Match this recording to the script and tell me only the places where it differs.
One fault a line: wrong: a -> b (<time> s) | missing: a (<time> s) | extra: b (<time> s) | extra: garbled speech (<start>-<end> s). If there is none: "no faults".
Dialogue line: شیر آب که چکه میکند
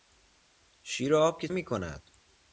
missing: چکه (1.5 s)